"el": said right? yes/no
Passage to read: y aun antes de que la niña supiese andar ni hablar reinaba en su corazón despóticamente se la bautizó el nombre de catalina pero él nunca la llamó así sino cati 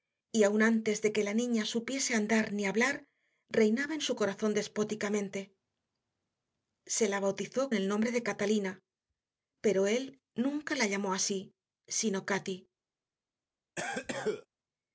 yes